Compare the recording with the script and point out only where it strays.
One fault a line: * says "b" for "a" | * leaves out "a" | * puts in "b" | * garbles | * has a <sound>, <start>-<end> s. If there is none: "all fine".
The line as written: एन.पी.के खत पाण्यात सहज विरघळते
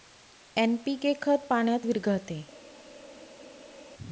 * leaves out "सहज"